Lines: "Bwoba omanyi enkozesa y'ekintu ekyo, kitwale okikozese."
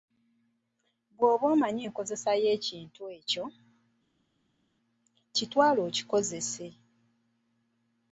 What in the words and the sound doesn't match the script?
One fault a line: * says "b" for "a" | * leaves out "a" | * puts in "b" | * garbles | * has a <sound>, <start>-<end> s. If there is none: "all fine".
all fine